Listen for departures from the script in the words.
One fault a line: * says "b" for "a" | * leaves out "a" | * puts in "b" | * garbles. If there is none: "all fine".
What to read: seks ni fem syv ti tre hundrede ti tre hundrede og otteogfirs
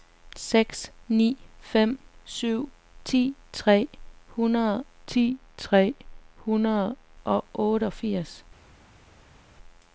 all fine